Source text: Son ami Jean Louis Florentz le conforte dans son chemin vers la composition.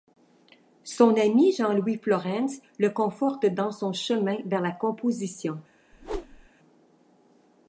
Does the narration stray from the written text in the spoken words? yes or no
no